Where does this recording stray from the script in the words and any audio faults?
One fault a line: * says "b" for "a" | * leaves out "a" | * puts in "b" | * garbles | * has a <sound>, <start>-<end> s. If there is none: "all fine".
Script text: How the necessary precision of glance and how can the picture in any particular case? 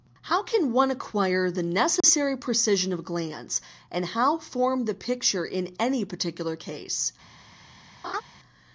* puts in "can one acquire"
* has a dropout, 2.0-2.0 s
* says "form" for "can"
* has a laugh, 8.0-8.2 s